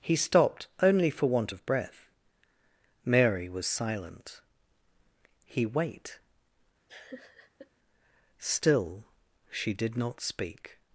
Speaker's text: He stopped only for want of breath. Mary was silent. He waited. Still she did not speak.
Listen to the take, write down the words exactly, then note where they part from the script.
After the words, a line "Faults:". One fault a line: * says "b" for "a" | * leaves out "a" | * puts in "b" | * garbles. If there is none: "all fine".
He stopped only for want of breath. Mary was silent. He wait. Still she did not speak.
Faults:
* says "wait" for "waited"